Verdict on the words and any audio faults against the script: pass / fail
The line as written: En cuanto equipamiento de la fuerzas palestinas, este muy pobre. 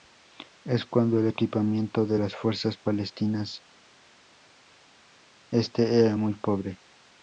fail